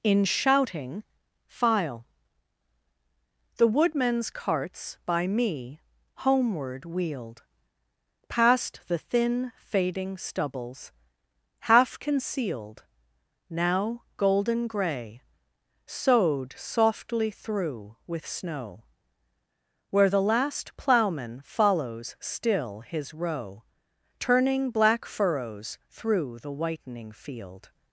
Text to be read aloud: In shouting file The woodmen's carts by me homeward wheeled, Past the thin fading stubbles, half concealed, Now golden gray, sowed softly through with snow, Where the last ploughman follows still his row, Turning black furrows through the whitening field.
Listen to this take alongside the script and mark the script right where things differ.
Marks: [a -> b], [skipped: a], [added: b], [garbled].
In shouting file The woodmen's carts by me homeward wheeled, Past the thin fading stubbles, half concealed, Now golden gray, sowed softly through with snow, Where the last ploughman follows still his row, Turning black furrows through the whitening field.